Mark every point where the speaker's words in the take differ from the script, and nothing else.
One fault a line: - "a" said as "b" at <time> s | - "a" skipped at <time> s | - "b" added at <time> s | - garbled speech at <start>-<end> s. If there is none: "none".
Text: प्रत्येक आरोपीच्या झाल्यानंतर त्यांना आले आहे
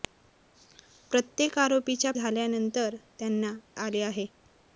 none